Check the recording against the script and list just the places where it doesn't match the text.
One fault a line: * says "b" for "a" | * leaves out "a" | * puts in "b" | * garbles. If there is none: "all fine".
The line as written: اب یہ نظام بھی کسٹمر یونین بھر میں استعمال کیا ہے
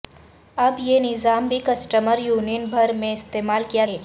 all fine